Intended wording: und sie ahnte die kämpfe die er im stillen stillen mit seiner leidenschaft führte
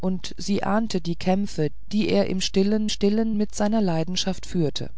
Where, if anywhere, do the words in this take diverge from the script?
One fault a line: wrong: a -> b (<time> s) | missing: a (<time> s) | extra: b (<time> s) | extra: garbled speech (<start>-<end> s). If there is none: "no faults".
no faults